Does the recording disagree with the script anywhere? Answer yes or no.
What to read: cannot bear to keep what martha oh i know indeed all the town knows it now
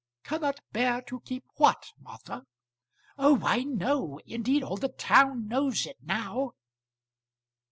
no